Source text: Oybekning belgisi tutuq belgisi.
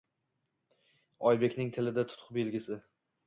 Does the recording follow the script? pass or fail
fail